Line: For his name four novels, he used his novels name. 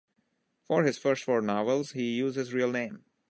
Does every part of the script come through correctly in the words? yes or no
no